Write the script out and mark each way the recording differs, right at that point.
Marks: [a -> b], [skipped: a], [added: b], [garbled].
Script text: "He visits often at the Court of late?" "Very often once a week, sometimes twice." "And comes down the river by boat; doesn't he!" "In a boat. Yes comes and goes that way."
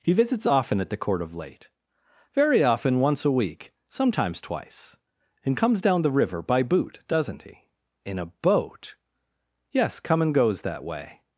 "He visits often at the Court of late?" "Very often once a week, sometimes twice." "And comes down the river by [boat; -> boot] doesn't he!" "In a boat. Yes [comes -> come] and goes that way."